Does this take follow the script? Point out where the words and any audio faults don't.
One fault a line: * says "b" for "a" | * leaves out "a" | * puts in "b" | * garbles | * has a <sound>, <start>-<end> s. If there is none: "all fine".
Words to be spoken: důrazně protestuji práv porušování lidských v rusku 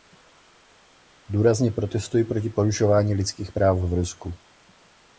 * says "proti" for "práv"
* puts in "práv"